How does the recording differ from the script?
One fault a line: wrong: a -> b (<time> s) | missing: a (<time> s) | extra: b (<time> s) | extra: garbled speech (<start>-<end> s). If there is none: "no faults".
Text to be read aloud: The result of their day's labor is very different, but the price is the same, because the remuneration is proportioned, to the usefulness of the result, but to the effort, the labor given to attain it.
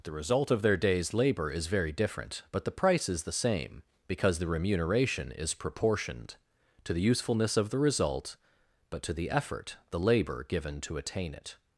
no faults